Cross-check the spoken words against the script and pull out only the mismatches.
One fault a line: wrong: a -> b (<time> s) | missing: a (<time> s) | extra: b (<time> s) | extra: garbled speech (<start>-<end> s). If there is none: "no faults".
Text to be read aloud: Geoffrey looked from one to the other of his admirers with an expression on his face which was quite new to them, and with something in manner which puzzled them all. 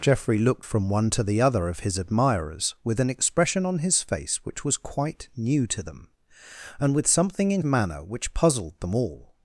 no faults